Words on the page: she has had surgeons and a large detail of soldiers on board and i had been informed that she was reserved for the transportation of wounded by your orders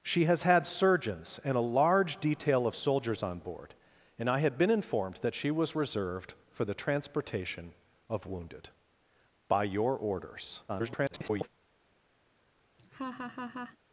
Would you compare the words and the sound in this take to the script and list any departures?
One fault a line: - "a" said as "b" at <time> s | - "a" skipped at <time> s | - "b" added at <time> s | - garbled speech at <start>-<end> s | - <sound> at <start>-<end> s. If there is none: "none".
- garbled speech at 10.7-11.5 s
- laugh at 12.8-13.8 s